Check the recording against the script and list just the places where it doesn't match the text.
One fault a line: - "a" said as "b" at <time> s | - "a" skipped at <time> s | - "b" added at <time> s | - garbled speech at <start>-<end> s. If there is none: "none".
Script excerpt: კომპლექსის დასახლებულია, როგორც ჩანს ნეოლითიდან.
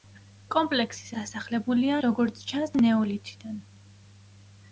none